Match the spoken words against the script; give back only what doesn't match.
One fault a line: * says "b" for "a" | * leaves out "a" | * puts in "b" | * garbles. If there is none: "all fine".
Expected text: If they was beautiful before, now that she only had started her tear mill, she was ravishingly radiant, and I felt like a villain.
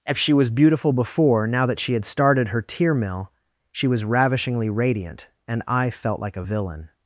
* says "she" for "they"
* leaves out "only"